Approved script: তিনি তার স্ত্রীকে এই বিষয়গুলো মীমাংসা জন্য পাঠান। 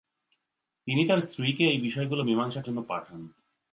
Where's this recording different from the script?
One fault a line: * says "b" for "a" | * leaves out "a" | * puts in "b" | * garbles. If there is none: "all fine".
all fine